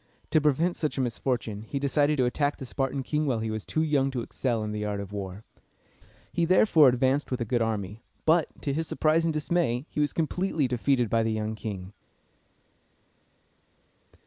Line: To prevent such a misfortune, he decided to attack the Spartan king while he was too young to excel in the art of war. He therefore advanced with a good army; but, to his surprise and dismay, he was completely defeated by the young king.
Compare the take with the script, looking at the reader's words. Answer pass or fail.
pass